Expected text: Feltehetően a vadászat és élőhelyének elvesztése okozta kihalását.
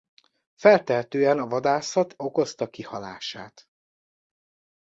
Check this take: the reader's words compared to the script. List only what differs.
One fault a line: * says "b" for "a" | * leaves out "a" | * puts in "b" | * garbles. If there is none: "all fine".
* leaves out "és élőhelyének elvesztése"